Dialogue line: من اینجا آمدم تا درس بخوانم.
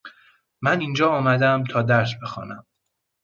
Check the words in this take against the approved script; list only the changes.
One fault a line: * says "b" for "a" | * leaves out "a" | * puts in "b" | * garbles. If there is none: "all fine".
all fine